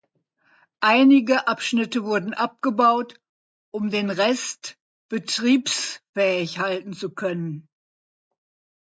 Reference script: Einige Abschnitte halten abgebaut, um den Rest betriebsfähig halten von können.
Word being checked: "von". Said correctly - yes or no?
no